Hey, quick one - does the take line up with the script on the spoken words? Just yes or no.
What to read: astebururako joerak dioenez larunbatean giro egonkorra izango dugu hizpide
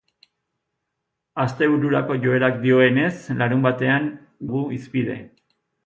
no